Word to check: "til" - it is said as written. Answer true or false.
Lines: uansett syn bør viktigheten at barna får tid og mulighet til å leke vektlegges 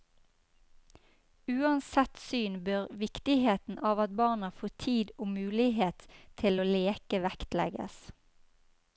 true